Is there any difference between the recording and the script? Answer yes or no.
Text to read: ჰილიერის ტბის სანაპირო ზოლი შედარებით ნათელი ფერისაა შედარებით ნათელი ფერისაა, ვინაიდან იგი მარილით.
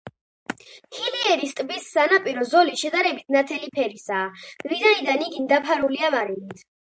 yes